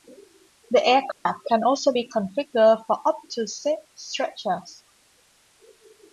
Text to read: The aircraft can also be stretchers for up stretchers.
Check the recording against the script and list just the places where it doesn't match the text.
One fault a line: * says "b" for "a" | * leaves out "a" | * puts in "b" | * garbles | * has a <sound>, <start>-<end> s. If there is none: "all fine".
* has a dropout, 1.1-1.3 s
* says "configured" for "stretchers"
* puts in "to six"